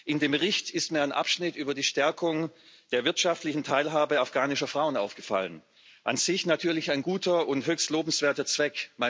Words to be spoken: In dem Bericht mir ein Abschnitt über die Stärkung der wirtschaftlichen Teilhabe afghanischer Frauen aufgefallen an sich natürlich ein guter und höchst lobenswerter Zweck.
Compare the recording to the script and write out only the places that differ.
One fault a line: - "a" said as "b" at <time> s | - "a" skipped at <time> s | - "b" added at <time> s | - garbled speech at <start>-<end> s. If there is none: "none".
- "ist" added at 0.7 s